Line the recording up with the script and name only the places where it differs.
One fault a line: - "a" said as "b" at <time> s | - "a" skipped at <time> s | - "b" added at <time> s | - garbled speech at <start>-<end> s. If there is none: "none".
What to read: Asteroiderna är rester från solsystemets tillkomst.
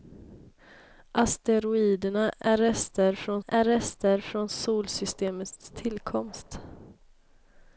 - "är rester från" added at 3.5 s